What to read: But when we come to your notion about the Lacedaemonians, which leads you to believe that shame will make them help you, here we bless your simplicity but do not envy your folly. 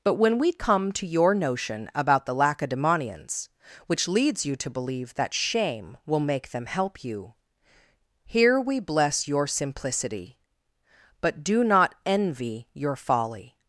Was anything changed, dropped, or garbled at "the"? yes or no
no